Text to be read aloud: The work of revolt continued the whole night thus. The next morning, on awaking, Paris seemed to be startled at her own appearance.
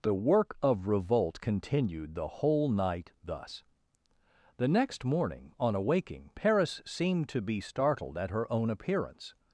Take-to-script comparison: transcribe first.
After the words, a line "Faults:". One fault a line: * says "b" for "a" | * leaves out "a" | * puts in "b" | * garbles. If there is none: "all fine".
The work of revolt continued the whole night thus. The next morning, on awaking, Paris seemed to be startled at her own appearance.
Faults:
all fine